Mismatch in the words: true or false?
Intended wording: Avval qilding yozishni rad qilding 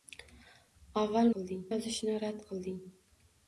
false